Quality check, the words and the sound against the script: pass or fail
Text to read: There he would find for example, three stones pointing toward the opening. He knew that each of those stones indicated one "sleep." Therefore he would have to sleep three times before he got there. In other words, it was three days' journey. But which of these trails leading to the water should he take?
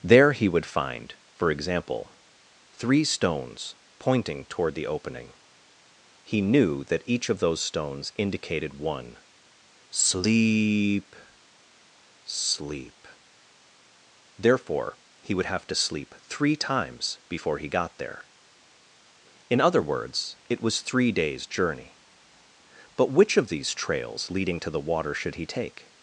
fail